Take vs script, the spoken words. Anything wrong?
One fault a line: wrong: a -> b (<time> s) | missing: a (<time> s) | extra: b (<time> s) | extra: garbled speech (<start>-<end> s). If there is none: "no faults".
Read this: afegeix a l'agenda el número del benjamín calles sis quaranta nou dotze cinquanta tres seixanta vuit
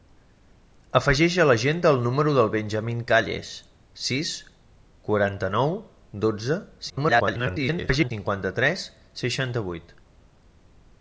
extra: garbled speech (6.9-8.1 s)